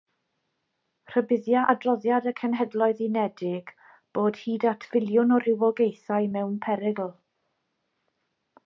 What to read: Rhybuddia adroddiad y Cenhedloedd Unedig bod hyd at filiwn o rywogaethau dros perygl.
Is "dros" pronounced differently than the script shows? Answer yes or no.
yes